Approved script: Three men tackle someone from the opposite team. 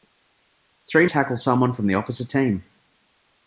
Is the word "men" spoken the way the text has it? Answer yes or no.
no